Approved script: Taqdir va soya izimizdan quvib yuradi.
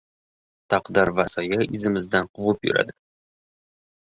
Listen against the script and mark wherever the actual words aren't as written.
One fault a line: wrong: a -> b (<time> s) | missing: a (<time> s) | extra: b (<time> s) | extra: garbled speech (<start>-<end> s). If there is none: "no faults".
no faults